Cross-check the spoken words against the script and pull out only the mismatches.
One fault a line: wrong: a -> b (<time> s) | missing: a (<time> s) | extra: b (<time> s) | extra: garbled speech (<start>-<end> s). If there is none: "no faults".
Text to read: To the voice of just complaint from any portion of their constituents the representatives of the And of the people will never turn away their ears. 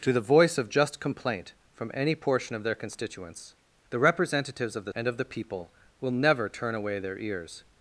no faults